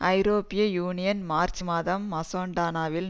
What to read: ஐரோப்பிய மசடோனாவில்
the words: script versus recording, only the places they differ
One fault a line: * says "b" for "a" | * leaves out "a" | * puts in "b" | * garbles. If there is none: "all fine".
* puts in "யூனியன் மார்ச் மாதம்"